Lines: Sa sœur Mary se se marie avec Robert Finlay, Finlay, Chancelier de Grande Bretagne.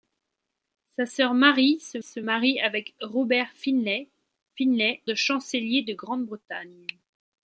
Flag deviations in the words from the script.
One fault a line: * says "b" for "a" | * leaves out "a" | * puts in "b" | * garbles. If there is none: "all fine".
all fine